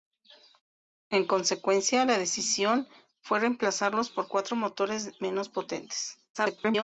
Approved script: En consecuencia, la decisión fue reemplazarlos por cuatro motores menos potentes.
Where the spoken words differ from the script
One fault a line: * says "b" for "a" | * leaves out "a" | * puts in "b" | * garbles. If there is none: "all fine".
* garbles